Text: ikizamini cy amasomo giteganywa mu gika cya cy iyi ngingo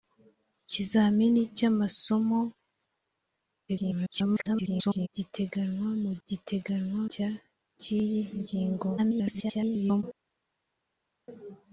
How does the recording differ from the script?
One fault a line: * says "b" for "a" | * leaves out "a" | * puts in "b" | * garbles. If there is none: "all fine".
* garbles
* says "giteganywa" for "gika"
* garbles